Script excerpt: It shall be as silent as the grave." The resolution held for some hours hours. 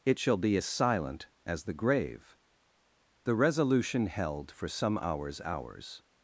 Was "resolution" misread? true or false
false